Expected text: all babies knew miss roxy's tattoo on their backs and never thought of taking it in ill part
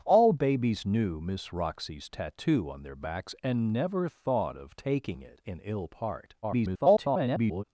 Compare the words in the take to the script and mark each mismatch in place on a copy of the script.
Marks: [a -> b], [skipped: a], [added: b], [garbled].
all babies knew miss roxy's tattoo on their backs and never thought of taking it in ill part [garbled]